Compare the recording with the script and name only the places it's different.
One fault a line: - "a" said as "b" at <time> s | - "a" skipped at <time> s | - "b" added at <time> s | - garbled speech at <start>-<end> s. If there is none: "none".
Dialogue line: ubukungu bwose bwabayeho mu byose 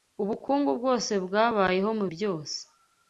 none